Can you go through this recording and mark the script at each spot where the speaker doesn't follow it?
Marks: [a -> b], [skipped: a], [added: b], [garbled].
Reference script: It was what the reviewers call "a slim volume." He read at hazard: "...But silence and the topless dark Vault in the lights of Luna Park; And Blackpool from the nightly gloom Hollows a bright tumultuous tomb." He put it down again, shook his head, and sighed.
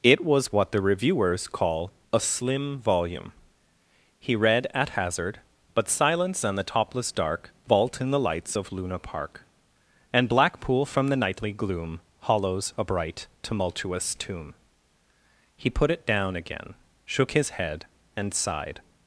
It was what the reviewers call "a slim volume." He read at hazard: "...But silence and the topless dark Vault in the lights of Luna Park; And Blackpool from the nightly gloom Hollows a bright tumultuous tomb." He put it down again, shook his head, and sighed.